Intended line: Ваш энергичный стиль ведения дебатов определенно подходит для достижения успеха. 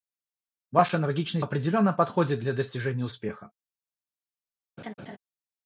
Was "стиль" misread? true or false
true